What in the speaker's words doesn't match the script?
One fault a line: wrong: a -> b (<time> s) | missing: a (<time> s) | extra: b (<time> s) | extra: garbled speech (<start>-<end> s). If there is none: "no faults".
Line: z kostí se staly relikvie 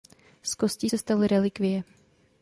no faults